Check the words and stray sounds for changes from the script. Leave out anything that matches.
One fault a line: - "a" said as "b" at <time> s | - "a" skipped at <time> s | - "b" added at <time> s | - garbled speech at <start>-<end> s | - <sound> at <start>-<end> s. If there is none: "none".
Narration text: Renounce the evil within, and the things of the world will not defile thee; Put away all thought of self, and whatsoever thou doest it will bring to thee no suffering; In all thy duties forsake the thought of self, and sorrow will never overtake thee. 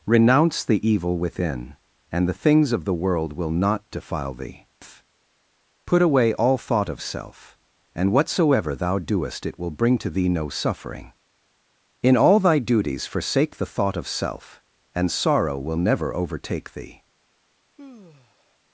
- sigh at 17.8-18.6 s